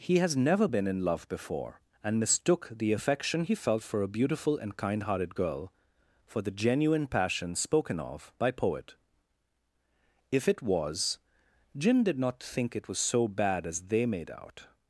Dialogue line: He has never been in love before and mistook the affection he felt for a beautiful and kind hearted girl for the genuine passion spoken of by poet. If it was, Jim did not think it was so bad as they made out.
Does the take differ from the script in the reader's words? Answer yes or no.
no